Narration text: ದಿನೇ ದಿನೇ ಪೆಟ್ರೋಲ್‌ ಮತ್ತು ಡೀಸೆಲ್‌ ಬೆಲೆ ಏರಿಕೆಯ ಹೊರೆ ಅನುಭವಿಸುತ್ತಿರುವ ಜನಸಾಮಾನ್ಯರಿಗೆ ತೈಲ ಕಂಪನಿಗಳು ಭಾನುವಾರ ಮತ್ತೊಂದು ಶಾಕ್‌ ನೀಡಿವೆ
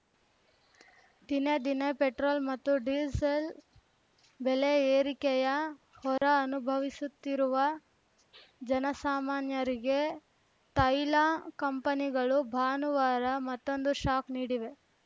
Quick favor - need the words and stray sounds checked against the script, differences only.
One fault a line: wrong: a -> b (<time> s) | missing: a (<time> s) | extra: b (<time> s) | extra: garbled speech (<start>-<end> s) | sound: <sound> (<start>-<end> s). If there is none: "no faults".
sound: dropout (6.2-6.2 s)